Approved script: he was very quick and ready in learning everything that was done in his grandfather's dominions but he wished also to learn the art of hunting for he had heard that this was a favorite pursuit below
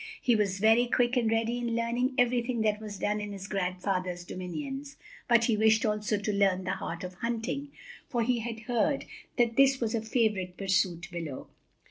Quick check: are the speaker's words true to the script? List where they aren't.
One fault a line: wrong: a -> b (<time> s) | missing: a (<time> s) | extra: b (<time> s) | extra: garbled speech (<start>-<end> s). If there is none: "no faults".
no faults